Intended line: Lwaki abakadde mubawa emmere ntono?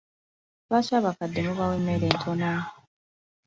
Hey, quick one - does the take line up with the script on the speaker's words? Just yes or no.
yes